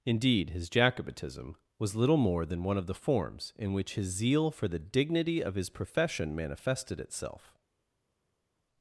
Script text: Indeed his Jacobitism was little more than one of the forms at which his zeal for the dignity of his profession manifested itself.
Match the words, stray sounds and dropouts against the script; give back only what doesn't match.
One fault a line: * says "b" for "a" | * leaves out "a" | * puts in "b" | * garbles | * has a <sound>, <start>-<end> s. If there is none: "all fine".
* says "in" for "at"